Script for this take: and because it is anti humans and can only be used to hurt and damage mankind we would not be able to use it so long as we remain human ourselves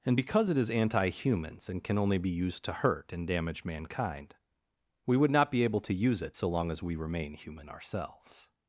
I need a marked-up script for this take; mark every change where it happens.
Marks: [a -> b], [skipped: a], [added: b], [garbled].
and because it is anti humans and can only be used to hurt and damage mankind we would not be able to use it so long as we remain human ourselves